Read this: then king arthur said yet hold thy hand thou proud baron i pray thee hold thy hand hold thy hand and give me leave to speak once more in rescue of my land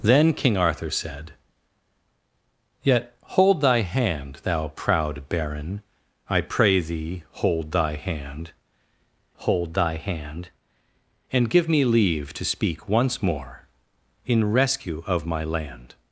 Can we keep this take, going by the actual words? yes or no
yes